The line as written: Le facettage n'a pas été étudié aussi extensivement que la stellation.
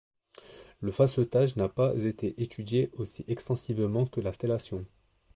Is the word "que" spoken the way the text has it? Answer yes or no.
yes